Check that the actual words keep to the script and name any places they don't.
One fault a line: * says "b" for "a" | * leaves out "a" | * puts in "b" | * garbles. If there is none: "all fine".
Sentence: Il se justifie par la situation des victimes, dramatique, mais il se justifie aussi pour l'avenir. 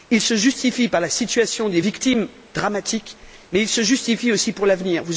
all fine